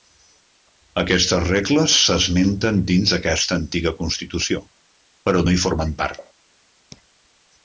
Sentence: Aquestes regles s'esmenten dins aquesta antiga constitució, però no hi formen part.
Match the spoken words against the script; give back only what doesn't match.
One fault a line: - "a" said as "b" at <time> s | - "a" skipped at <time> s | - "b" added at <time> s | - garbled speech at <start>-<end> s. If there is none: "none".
none